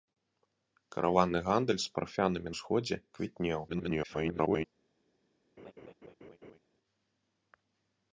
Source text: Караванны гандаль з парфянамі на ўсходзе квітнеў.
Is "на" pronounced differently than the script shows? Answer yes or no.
yes